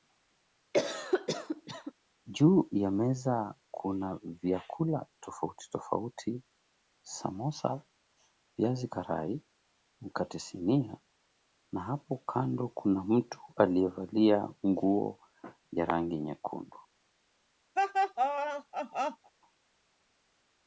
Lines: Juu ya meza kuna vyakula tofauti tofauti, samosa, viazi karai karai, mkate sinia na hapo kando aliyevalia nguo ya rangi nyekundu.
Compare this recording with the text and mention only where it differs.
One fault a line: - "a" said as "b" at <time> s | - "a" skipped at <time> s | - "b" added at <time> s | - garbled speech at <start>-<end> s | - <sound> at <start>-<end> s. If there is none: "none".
- cough at 0.7-1.9 s
- "karai" skipped at 9.4 s
- "kuna mtu" added at 12.7 s
- laugh at 17.8-19.3 s